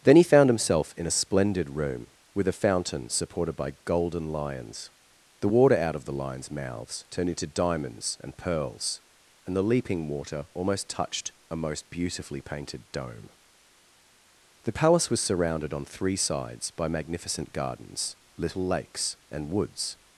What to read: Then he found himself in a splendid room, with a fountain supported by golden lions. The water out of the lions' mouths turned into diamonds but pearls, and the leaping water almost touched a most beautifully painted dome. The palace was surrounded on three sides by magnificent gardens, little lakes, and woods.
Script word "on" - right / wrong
right